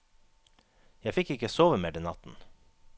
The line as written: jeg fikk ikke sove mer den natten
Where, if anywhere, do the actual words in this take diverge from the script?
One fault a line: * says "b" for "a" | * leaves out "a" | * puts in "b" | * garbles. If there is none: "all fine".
all fine